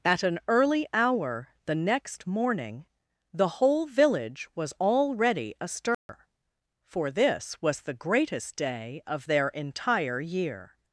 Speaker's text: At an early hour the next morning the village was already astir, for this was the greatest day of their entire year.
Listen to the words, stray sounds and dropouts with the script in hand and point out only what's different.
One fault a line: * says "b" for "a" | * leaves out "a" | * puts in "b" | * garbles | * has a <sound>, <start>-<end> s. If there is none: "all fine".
* puts in "whole"
* has a dropout, 5.9-6.1 s